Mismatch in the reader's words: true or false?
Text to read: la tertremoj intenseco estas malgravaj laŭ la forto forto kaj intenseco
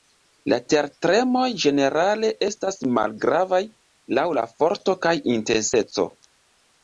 true